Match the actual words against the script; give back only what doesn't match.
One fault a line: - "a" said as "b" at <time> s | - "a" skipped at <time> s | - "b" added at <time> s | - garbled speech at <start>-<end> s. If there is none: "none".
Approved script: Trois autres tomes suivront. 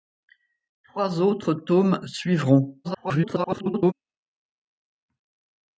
- garbled speech at 2.8-3.9 s